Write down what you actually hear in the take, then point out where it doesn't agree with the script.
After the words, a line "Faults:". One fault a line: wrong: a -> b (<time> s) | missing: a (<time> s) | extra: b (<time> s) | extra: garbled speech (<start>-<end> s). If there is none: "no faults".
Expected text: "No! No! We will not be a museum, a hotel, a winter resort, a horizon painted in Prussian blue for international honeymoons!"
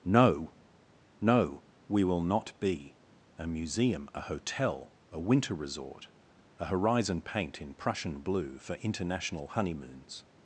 "No! No! We will not be a museum, a hotel, a winter resort, a horizon paint in Prussian blue for international honeymoons!"
Faults:
wrong: painted -> paint (7.2 s)